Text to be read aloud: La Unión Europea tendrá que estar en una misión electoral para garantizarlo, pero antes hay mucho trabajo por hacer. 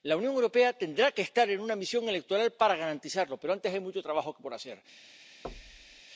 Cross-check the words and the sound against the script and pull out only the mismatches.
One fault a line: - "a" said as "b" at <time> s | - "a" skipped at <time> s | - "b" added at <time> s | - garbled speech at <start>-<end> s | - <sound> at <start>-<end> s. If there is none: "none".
- thud at 5.4-6.0 s